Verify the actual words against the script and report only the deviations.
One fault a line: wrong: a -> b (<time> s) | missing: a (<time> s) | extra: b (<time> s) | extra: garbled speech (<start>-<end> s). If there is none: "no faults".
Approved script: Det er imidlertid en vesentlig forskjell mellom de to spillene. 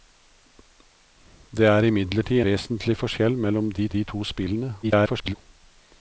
missing: en (2.4 s)
extra: de (3.9 s)
extra: garbled speech (4.8-5.3 s)